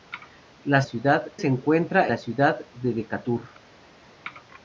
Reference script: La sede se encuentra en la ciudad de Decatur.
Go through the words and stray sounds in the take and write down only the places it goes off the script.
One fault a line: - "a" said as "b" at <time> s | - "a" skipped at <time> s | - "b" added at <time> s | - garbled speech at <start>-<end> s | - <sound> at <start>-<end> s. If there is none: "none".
- "sede" said as "ciudad" at 0.8 s
- "en" skipped at 2.1 s